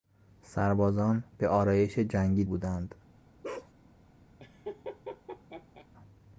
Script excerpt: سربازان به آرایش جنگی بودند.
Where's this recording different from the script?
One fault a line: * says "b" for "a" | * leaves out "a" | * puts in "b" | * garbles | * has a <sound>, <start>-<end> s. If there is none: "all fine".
* has a bark, 3.4-3.7 s
* has a laugh, 4.4-5.9 s